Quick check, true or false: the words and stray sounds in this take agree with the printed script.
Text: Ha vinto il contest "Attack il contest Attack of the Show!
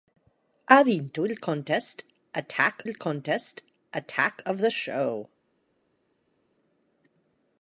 true